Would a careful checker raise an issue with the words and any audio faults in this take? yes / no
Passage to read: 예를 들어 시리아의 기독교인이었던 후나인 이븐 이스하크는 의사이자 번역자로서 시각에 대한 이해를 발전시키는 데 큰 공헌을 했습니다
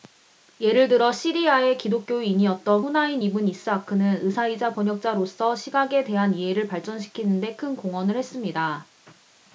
no